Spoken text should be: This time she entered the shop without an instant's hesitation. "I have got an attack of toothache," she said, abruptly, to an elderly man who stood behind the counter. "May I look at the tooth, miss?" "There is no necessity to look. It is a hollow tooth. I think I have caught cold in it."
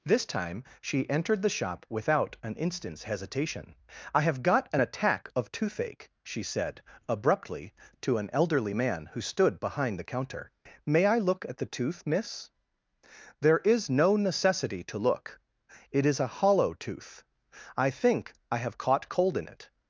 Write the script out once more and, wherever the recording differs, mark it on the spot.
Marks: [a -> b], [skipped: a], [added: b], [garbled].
This time she entered the shop without an instant's hesitation. "I have got an attack of toothache," she said, abruptly, to an elderly man who stood behind the counter. "May I look at the tooth, miss?" "There is no necessity to look. It is a hollow tooth. I think I have caught cold in it."